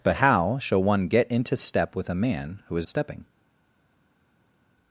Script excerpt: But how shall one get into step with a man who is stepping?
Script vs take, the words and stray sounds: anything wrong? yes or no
no